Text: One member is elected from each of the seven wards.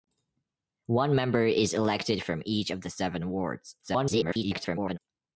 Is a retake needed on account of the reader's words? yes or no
yes